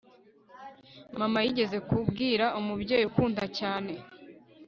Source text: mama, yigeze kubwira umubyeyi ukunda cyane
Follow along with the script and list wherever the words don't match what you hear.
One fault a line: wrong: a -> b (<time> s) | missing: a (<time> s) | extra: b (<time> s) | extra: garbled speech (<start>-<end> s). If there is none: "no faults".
no faults